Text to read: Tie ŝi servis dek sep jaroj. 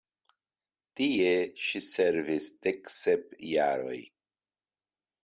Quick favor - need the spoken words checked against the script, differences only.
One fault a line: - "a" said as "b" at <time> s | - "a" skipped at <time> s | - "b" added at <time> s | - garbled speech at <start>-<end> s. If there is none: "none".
none